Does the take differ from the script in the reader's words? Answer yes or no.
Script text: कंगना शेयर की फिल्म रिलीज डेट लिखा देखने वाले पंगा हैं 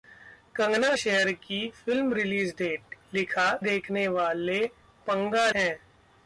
no